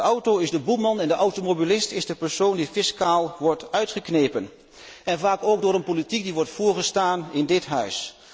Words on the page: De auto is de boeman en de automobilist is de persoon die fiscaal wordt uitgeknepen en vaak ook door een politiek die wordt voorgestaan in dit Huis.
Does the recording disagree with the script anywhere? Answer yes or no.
no